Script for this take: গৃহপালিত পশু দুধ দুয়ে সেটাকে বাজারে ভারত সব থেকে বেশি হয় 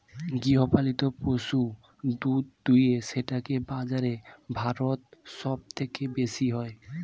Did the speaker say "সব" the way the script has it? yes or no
yes